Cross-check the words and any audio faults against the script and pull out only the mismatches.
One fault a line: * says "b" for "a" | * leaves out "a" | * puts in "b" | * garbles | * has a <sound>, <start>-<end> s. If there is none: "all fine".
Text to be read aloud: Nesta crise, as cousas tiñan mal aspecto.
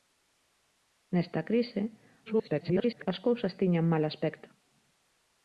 * garbles